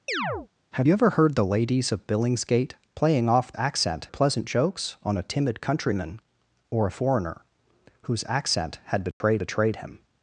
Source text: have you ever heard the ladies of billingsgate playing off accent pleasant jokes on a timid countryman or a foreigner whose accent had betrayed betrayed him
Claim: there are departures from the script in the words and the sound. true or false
true